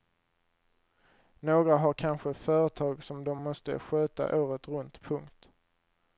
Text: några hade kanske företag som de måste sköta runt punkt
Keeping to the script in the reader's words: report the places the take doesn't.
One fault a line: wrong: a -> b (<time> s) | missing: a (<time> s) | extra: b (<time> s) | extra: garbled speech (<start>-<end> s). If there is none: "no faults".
wrong: hade -> har (1.8 s)
extra: året (4.4 s)